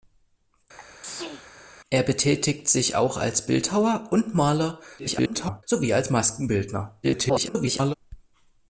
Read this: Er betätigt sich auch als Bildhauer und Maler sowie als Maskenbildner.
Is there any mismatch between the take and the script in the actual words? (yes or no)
yes